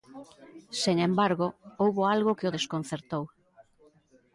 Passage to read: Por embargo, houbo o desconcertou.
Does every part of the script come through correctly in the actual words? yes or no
no